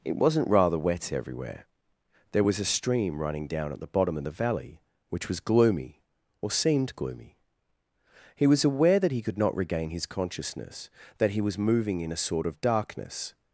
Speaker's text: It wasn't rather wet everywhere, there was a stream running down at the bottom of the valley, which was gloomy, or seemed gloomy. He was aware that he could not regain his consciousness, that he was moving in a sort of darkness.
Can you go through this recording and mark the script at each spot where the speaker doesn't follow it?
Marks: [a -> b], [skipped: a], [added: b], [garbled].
It wasn't rather wet everywhere, there was a stream running down at the bottom of the valley, which was gloomy, or seemed gloomy. He was aware that he could not regain his consciousness, that he was moving in a sort of darkness.